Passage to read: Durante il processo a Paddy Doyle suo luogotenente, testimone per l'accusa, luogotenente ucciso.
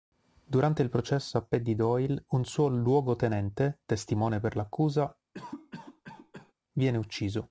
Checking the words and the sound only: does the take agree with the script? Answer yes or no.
no